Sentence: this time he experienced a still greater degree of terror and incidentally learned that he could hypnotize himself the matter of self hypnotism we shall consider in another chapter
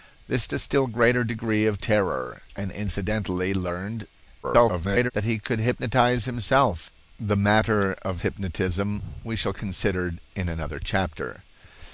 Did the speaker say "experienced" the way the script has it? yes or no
no